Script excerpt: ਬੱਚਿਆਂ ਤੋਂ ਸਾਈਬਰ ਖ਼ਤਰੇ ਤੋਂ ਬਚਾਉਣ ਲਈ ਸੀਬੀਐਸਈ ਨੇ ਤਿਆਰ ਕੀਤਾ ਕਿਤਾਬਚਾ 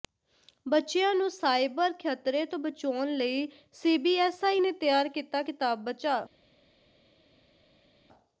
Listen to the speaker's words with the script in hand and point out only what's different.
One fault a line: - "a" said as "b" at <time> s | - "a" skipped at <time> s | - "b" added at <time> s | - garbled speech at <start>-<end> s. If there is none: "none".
- "ਤੋਂ" said as "ਨੂੰ" at 1.1 s